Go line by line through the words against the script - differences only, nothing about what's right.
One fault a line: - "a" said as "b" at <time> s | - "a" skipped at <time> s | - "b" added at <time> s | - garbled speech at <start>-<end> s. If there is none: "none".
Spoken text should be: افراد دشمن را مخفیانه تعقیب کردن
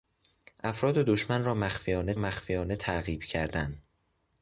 - "مخفیانه" added at 2.1 s